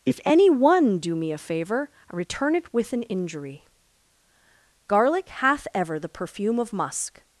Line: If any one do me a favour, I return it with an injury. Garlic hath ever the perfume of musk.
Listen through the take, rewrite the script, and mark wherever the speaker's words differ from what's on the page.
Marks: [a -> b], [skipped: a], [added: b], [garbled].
If any one do me a favour, I return it with an injury. Garlic hath ever the perfume of musk.